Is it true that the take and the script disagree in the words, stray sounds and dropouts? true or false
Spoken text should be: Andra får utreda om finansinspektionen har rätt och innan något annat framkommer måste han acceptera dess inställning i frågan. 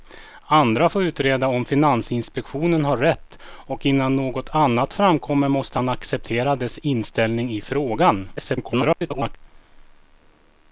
true